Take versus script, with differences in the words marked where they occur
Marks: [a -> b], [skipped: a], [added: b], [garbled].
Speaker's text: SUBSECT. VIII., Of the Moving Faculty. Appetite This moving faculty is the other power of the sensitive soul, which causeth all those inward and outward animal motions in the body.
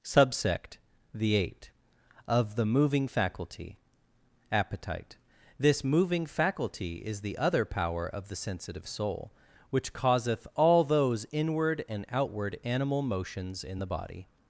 SUBSECT. [VIII., -> The eight] Of the Moving Faculty. Appetite This moving faculty is the other power of the sensitive soul, which causeth all those inward and outward animal motions in the body.